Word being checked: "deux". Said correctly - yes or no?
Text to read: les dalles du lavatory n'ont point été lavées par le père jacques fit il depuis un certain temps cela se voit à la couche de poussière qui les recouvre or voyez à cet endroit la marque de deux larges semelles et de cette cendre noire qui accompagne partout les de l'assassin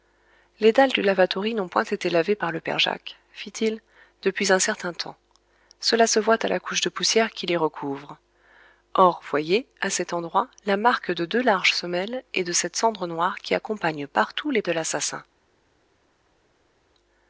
yes